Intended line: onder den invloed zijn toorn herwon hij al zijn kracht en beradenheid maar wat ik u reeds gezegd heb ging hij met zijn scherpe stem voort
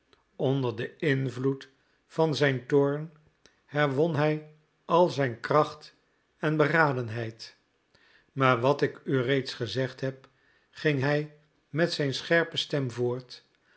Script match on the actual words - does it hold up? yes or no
no